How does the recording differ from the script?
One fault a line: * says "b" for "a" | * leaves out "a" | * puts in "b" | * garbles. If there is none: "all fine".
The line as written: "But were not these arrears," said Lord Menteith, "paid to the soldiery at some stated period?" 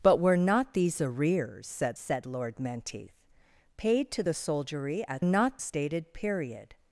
* puts in "said"
* says "not" for "some"